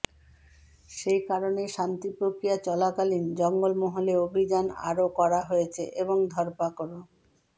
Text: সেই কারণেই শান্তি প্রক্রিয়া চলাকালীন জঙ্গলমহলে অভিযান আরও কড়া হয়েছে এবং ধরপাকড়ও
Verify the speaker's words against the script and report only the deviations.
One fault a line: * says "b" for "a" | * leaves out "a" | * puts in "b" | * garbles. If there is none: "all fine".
all fine